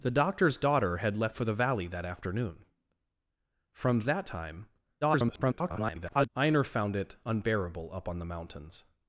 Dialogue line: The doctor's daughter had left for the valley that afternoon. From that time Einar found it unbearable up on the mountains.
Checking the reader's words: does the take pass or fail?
fail